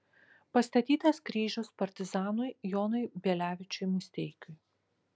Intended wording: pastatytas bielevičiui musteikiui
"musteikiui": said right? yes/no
yes